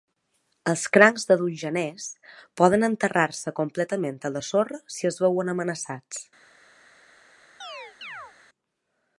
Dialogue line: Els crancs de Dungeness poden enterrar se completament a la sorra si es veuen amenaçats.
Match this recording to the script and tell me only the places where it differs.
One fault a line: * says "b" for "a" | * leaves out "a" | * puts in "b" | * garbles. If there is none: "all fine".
all fine